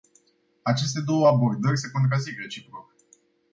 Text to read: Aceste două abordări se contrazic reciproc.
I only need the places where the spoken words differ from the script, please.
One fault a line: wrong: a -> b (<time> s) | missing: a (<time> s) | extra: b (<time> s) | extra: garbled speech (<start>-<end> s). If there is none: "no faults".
no faults